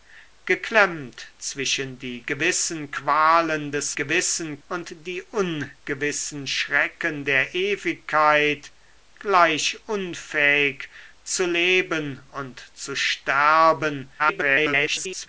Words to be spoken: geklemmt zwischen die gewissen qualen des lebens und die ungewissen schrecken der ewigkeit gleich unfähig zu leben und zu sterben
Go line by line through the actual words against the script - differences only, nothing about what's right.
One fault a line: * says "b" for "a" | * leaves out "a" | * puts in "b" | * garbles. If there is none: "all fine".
* says "gewissen" for "lebens"
* garbles